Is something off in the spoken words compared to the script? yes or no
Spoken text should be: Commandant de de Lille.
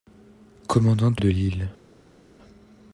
no